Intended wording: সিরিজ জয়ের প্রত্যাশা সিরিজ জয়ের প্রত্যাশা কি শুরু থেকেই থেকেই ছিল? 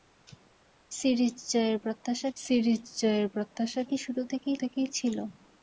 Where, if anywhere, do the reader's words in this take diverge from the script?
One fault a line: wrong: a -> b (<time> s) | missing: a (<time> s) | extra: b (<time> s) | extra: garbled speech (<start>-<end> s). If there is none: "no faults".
no faults